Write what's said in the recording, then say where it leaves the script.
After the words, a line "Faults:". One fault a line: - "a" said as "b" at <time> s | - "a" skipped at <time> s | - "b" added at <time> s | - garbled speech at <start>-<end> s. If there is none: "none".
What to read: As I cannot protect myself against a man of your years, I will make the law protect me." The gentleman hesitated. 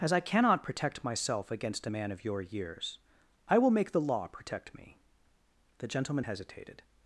As I cannot protect myself against a man of your years, I will make the law protect me." The gentleman hesitated.
Faults:
none